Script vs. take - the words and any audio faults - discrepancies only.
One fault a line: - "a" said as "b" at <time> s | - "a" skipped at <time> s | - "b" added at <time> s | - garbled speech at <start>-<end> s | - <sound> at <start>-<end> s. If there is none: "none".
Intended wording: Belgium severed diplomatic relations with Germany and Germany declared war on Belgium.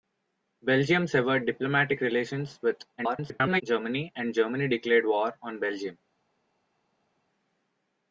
- garbled speech at 3.0-3.6 s